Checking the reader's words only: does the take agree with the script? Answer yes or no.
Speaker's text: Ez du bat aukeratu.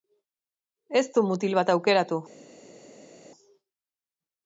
no